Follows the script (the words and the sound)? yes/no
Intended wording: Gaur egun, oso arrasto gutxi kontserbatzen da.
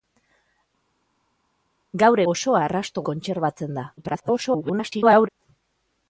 no